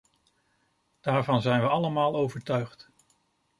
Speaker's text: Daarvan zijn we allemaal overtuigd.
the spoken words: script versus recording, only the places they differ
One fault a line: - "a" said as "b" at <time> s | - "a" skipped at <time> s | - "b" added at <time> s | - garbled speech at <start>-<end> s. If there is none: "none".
none